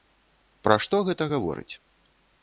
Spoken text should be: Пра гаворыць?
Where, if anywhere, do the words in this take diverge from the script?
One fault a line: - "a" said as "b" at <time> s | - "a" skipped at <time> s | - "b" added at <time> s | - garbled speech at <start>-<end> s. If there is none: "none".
- "што гэта" added at 0.8 s